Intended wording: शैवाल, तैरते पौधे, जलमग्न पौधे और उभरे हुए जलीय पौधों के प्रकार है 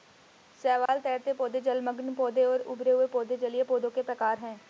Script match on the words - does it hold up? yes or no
no